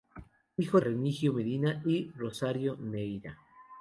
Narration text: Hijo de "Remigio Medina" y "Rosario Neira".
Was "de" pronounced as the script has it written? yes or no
no